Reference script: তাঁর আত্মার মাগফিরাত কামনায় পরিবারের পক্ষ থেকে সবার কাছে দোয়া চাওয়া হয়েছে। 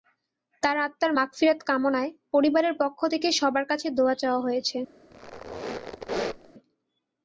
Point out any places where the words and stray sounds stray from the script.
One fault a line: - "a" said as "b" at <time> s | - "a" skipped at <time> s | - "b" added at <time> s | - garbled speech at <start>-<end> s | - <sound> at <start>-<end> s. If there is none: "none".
- squeak at 5.1-6.5 s